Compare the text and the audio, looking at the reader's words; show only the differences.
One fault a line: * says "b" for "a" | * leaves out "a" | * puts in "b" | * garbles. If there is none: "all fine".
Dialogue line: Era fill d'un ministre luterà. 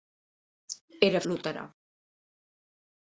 * leaves out "fill d'un ministre"